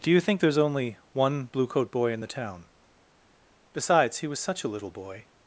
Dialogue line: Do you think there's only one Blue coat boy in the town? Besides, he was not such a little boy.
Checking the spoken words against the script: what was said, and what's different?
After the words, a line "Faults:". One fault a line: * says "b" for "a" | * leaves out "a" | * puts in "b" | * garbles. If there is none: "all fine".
Do you think there's only one Blue coat boy in the town? Besides, he was such a little boy.
Faults:
* leaves out "not"